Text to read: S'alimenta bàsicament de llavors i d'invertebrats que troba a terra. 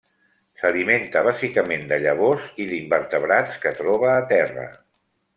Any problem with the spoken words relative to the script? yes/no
no